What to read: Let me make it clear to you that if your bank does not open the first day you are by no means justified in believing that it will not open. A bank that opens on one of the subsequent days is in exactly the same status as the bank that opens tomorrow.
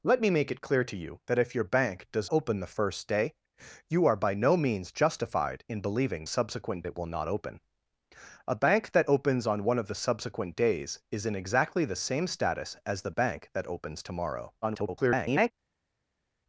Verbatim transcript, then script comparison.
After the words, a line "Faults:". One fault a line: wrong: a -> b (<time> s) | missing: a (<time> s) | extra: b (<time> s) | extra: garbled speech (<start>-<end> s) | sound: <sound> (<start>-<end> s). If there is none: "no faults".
Let me make it clear to you that if your bank does open the first day you are by no means justified in believing subsequent it will not open. A bank that opens on one of the subsequent days is in exactly the same status as the bank that opens tomorrow. [garbled]
Faults:
missing: not (2.3 s)
wrong: that -> subsequent (6.3 s)
extra: garbled speech (14.6-15.5 s)